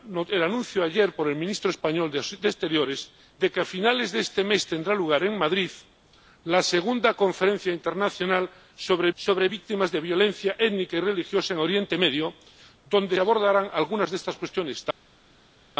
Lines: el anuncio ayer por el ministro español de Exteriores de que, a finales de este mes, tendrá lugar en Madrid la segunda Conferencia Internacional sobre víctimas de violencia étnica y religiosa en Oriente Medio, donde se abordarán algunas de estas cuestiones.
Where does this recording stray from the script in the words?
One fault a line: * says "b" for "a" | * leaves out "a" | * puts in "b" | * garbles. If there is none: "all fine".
* puts in "sobre"
* leaves out "se"